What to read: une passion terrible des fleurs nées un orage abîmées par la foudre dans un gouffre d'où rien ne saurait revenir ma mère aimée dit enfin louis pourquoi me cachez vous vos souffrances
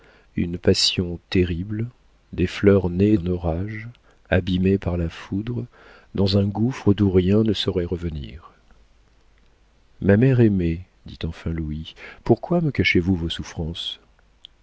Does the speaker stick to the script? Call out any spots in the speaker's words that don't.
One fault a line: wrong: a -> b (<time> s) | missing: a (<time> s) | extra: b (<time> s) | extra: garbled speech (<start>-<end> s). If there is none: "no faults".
no faults